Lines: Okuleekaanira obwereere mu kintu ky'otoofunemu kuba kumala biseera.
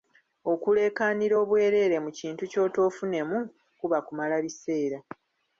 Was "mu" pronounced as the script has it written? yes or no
yes